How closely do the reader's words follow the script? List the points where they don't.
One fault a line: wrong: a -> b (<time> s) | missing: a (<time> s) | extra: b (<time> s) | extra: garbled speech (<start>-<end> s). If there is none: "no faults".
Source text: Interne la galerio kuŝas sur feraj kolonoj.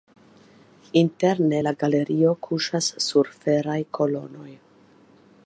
no faults